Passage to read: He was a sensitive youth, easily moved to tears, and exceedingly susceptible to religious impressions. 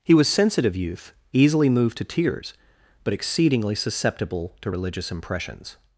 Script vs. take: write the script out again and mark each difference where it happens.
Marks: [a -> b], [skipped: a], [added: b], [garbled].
He was [skipped: a] sensitive youth, easily moved to tears, [and -> but] exceedingly susceptible to religious impressions.